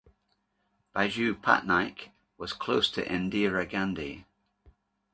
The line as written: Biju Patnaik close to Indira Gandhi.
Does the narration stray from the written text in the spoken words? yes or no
yes